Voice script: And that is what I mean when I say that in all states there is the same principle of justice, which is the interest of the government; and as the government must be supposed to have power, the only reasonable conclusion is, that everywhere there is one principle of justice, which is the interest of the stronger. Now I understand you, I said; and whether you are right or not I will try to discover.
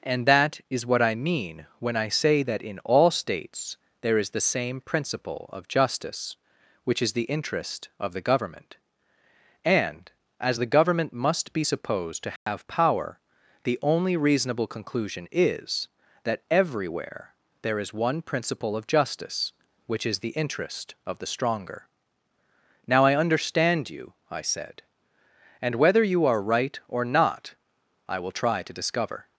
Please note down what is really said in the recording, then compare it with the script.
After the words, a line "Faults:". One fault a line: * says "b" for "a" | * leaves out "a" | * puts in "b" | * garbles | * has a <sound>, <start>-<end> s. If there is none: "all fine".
And that is what I mean when I say that in all states there is the same principle of justice, which is the interest of the government; and as the government must be supposed to have power, the only reasonable conclusion is, that everywhere there is one principle of justice, which is the interest of the stronger. Now I understand you, I said; and whether you are right or not I will try to discover.
Faults:
* has a dropout, 12.4-12.5 s